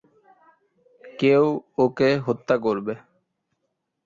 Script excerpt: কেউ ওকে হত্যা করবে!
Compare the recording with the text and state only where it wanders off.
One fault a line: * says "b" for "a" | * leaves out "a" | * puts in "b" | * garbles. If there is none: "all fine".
all fine